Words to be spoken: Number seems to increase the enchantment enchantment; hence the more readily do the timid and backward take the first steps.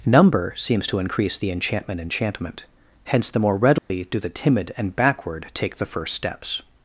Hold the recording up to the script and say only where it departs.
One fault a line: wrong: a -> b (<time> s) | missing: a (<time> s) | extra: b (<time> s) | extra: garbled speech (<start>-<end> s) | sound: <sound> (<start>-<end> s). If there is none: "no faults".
sound: dropout (3.8-3.9 s)